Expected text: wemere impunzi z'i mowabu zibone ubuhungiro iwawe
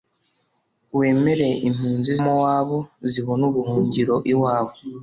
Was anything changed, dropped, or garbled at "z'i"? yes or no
yes